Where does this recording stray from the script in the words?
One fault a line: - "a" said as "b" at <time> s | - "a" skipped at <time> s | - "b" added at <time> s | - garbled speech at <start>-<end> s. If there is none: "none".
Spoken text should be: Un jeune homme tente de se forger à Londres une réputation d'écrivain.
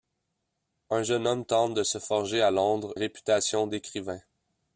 - "une" skipped at 3.0 s